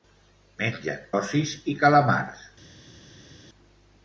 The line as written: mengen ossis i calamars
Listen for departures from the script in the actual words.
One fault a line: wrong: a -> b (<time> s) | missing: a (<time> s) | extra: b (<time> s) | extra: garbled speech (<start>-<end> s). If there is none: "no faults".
no faults